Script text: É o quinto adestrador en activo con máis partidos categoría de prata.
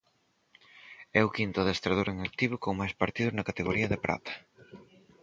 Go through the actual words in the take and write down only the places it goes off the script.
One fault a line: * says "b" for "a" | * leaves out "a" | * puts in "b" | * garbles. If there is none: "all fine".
* puts in "na"